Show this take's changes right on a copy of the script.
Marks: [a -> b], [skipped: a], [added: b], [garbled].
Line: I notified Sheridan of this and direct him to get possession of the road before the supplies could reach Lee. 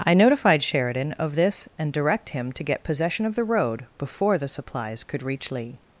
I notified Sheridan of this and direct him to get possession of the road before the supplies could reach Lee.